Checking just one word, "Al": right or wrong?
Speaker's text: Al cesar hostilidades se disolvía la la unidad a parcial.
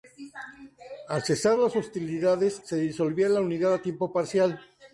right